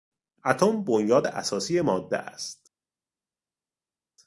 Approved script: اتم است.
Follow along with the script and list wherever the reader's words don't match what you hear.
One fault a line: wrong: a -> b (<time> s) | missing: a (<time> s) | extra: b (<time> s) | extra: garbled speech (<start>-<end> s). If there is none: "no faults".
extra: بنیاد اساسی ماده (0.8 s)